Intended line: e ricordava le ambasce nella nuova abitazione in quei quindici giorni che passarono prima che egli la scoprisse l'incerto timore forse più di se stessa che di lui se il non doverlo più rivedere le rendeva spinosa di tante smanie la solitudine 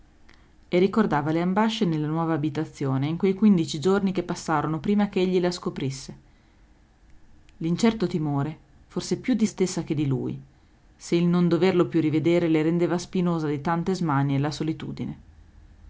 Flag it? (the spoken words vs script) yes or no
yes